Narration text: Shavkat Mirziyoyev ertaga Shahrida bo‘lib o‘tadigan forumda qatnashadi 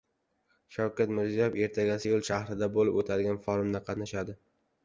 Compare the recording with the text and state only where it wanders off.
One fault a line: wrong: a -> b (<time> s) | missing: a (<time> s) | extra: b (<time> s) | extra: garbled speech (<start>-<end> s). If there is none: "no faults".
extra: Seul (2.0 s)